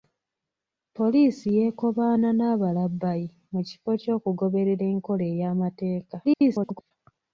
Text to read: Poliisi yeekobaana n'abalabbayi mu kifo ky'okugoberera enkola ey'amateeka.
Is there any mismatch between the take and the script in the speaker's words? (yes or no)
yes